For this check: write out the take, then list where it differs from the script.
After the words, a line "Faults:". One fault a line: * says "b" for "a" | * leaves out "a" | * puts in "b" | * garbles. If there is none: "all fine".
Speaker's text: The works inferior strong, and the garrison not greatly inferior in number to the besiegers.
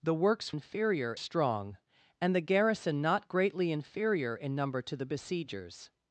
The works inferior strong, and the garrison not greatly inferior in number to the besiegers.
Faults:
all fine